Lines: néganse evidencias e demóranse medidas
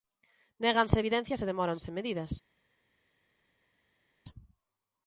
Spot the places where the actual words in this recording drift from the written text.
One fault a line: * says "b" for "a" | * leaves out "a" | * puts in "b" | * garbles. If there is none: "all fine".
all fine